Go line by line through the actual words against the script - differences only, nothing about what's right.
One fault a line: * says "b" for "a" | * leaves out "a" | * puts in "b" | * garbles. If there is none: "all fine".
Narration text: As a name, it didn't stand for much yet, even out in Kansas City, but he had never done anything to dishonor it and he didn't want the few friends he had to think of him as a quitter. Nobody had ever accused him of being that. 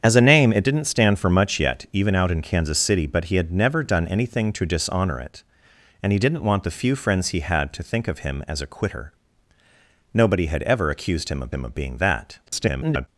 * puts in "him of"
* garbles